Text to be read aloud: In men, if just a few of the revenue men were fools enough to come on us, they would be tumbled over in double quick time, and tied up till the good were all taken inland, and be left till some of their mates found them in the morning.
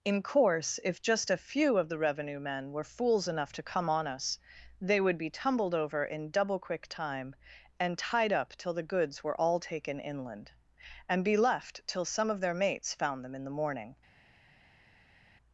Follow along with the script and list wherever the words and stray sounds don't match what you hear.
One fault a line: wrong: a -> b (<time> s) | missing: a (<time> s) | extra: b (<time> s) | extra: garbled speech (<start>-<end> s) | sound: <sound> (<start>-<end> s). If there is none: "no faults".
wrong: men -> course (0.2 s)
wrong: good -> goods (8.9 s)